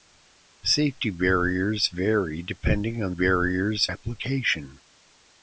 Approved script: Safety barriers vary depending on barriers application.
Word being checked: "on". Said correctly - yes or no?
yes